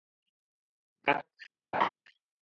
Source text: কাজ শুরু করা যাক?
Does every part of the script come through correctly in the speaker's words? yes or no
no